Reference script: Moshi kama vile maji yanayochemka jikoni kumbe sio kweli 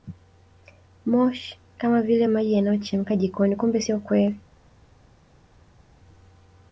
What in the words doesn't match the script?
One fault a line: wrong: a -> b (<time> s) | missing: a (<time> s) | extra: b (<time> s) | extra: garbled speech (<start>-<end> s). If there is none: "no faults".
no faults